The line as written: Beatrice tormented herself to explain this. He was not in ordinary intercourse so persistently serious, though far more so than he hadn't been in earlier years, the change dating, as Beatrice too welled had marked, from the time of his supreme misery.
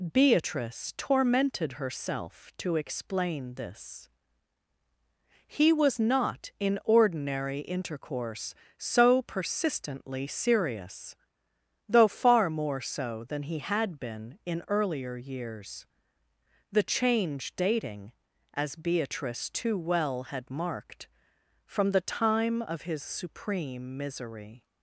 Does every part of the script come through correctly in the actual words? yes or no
no